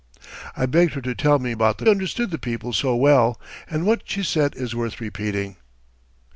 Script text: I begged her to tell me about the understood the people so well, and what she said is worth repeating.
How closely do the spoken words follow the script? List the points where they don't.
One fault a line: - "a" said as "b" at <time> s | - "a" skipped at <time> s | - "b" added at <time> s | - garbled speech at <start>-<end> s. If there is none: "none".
none